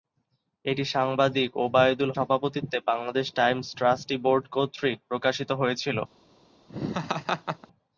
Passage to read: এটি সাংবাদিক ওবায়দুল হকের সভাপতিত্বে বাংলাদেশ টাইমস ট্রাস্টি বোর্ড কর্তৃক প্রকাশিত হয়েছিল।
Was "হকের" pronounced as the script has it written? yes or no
no